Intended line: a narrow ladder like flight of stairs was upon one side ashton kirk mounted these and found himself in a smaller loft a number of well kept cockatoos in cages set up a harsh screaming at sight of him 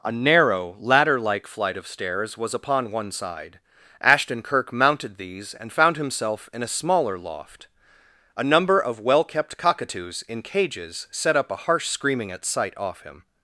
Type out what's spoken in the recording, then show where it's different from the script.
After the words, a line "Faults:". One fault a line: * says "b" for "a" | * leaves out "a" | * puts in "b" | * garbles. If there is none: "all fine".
a narrow ladder like flight of stairs was upon one side ashton kirk mounted these and found himself in a smaller loft a number of well kept cockatoos in cages set up a harsh screaming at sight off him
Faults:
* says "off" for "of"